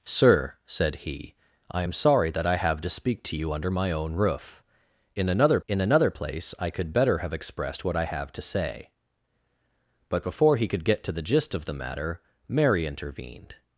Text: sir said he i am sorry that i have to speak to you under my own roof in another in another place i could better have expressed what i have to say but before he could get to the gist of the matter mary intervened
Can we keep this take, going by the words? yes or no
yes